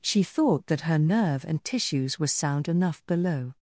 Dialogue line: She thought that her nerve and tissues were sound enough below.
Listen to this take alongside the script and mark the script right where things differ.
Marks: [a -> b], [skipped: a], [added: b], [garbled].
She thought that her nerve and tissues were sound enough below.